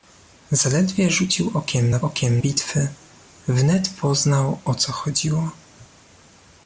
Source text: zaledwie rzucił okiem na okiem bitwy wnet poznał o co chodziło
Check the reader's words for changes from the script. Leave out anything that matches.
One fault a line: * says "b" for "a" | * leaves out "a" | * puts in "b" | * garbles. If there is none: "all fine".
all fine